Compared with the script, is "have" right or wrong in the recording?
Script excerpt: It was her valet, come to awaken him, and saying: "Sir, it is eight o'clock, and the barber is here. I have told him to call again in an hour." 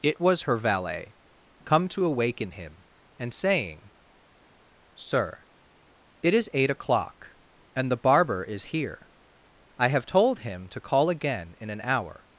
right